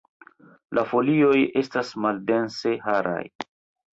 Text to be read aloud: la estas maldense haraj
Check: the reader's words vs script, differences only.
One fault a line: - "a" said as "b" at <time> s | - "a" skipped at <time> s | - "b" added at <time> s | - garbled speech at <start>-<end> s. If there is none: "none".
- "folioj" added at 0.9 s